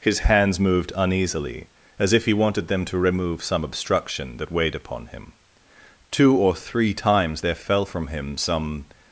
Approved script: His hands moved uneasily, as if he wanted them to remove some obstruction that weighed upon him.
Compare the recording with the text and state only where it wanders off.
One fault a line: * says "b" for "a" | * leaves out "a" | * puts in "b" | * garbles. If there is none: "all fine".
* puts in "Two or three times there fell from him some"